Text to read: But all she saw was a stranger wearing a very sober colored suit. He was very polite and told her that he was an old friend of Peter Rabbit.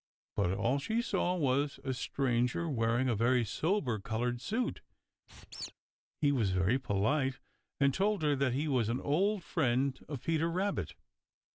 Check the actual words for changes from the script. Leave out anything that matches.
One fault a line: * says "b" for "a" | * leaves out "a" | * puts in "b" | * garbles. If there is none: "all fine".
all fine